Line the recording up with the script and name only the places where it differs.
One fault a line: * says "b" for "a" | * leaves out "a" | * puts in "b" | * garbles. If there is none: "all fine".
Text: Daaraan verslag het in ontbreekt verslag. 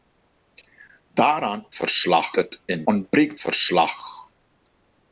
all fine